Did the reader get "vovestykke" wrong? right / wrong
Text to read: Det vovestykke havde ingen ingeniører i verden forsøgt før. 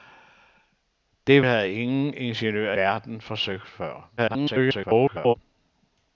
wrong